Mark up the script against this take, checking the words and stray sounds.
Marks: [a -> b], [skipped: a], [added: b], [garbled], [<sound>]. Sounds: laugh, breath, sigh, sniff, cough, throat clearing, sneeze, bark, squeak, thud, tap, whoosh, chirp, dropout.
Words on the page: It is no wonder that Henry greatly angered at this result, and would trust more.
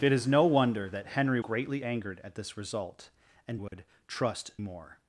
It is no wonder that Henry greatly angered at this result, and would [dropout] trust more.